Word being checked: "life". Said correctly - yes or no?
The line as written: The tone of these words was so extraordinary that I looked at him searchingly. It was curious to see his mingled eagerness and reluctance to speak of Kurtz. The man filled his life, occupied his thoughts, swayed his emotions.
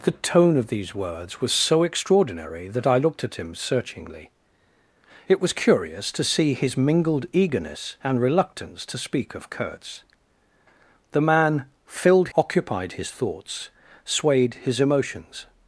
no